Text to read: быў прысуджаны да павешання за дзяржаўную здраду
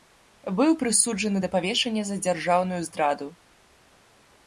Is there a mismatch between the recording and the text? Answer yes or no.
no